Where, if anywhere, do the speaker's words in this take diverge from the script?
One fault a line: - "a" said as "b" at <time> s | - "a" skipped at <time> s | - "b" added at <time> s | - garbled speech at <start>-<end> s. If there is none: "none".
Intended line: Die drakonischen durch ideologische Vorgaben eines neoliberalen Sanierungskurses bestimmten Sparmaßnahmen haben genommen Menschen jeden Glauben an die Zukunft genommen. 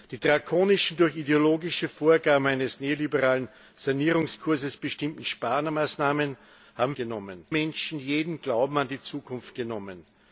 none